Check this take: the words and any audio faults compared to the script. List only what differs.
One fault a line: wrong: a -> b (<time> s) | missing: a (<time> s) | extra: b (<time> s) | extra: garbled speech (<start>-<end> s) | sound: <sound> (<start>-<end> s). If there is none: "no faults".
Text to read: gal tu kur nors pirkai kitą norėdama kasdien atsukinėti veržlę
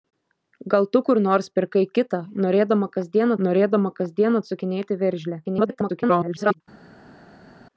extra: norėdama kasdien (3.5 s)
extra: garbled speech (5.4-6.6 s)